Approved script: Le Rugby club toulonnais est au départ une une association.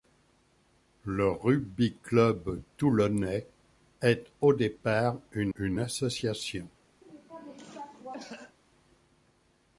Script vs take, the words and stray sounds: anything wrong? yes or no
yes